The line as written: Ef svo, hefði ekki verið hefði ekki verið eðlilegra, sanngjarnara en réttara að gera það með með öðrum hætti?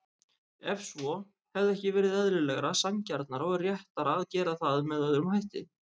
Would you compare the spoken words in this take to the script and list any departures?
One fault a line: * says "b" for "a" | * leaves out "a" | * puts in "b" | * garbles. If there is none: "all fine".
* leaves out "hefði ekki verið"
* says "og" for "en"
* leaves out "með"